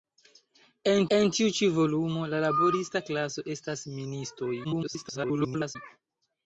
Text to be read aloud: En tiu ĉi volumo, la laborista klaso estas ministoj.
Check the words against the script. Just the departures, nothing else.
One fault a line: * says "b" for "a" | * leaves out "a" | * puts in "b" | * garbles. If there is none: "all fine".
* puts in "en"
* garbles